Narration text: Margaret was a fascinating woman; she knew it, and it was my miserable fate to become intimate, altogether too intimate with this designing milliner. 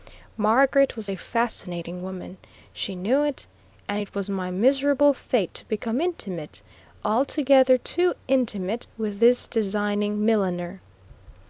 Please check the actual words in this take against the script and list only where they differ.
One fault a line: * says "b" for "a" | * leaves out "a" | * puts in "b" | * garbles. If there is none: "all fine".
all fine